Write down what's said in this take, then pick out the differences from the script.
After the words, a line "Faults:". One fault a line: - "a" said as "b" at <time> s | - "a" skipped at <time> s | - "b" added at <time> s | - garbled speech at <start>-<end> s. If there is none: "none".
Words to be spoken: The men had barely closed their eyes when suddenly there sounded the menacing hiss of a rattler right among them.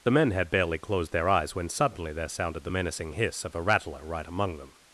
The men had barely closed their eyes when suddenly there sounded the menacing hiss of a rattler right among them.
Faults:
none